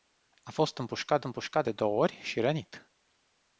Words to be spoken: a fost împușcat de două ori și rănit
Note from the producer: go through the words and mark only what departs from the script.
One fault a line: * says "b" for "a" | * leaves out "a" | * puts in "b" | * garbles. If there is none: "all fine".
* puts in "împușcat"